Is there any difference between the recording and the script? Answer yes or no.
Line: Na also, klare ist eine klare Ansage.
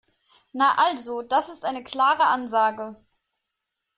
yes